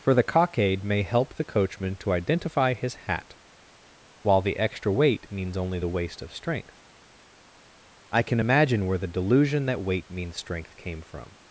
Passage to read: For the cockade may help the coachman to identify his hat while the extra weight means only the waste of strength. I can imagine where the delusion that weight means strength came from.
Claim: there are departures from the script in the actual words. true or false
false